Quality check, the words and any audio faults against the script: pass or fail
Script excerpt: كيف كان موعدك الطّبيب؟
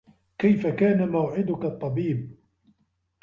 pass